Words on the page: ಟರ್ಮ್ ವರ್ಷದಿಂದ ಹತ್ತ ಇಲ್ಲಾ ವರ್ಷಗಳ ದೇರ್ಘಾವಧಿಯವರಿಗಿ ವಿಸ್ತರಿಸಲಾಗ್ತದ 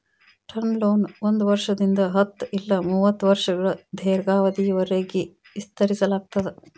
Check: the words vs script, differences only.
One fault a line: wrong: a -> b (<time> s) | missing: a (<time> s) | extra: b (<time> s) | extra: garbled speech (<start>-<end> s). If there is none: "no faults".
extra: ಲೋನ ಒಂದ್ (0.8 s)
extra: ಮೂವತ್ತ (2.9 s)